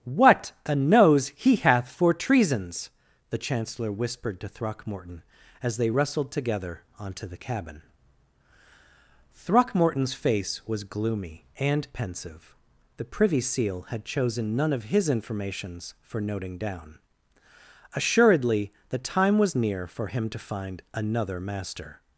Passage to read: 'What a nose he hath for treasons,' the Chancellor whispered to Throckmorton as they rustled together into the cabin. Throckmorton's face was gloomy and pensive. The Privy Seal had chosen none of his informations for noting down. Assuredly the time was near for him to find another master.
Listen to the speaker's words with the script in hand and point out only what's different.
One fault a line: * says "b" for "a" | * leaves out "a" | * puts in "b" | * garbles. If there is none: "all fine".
* says "onto" for "into"